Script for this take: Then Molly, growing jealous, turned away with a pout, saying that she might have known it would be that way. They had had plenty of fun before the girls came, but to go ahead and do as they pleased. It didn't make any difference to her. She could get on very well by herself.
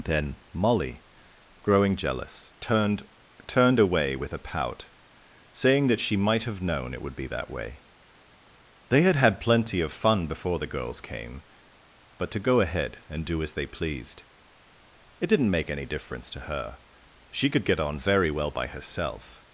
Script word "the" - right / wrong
right